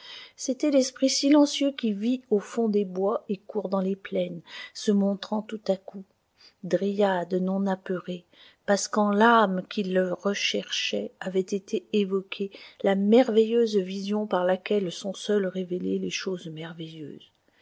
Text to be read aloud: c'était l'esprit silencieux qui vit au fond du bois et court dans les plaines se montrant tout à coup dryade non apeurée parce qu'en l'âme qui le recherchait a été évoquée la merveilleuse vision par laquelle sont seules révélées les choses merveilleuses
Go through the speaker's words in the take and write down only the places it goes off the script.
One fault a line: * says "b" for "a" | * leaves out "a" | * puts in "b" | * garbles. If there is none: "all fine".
* says "des" for "du"
* says "avait" for "a"